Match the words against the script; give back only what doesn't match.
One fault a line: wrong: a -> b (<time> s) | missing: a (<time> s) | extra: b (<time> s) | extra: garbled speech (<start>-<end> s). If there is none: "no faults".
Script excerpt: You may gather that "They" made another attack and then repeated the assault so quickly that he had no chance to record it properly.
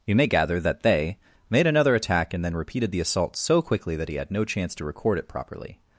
no faults